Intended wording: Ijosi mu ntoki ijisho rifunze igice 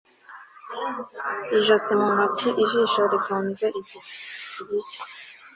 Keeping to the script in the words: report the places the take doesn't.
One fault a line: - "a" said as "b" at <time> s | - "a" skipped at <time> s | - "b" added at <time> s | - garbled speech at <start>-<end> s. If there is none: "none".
none